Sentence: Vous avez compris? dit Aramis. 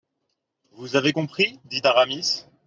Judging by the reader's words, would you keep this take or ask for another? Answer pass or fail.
pass